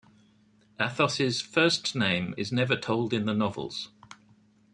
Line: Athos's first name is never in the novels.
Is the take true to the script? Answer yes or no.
no